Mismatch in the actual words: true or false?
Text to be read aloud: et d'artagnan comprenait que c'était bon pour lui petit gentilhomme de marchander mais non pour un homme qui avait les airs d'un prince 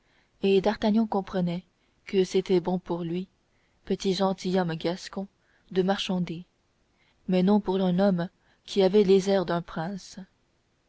true